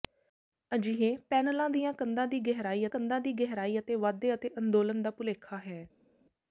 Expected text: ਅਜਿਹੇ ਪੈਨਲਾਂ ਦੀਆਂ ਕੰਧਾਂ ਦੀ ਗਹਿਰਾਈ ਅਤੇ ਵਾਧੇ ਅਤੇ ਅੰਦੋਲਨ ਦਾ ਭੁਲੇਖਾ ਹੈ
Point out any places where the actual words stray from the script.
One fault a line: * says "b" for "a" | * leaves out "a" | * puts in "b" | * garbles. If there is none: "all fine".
* puts in "ਕੰਧਾਂ ਦੀ ਗਹਿਰਾਈ"